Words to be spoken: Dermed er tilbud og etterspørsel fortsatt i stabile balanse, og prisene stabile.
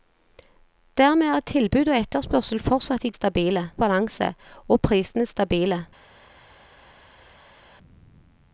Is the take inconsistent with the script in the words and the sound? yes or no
no